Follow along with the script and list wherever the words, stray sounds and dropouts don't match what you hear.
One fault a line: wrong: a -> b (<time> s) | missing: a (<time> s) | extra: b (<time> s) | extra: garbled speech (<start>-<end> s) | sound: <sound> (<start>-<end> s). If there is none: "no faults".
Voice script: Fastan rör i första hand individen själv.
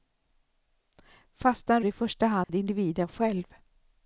missing: rör (1.8 s)
sound: dropout (2.4-2.5 s)